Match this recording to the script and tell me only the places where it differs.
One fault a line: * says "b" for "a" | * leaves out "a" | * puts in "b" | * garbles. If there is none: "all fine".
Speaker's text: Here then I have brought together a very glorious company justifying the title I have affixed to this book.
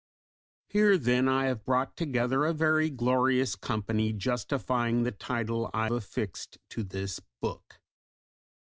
* leaves out "have"